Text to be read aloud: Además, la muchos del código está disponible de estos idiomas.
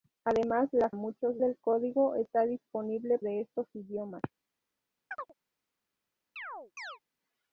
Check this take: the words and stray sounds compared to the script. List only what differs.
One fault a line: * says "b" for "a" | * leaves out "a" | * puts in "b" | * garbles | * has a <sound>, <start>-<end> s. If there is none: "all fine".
* has a chirp, 5.1-5.3 s
* has a chirp, 6.4-7.0 s